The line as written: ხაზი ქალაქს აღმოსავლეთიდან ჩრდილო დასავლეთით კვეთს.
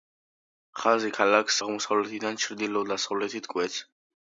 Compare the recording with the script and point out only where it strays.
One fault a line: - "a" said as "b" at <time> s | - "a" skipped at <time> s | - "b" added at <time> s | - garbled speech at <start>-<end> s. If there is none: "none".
none